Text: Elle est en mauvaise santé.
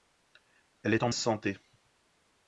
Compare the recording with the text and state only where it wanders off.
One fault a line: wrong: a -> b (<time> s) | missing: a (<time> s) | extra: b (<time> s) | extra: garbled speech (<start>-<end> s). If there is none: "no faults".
missing: mauvaise (1.1 s)